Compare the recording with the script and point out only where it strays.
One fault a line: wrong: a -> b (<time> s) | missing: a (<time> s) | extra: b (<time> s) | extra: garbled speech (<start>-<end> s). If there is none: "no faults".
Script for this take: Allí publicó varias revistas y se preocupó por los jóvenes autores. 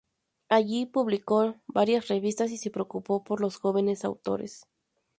no faults